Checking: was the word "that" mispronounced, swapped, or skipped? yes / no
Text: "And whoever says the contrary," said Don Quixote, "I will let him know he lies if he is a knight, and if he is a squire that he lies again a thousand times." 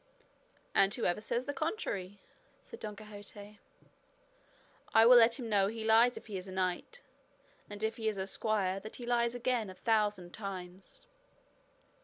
no